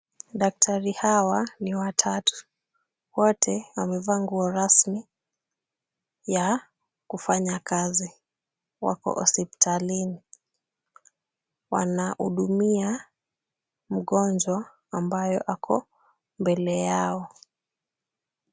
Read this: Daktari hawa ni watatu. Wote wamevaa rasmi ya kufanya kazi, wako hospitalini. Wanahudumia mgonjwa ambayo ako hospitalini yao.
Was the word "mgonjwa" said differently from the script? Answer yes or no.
no